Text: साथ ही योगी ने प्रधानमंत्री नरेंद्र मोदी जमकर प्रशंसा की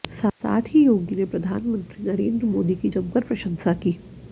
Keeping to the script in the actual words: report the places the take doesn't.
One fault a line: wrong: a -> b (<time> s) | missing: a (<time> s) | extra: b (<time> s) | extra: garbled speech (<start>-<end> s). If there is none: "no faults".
extra: की (2.7 s)